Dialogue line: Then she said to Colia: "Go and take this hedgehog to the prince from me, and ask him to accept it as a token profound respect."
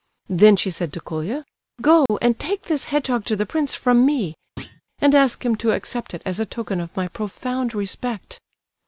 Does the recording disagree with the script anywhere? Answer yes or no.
yes